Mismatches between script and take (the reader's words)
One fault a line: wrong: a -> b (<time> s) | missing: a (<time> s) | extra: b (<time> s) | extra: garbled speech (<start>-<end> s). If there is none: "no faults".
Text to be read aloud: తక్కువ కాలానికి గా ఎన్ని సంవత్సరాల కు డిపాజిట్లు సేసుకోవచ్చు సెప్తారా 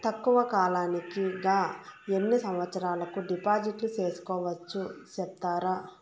no faults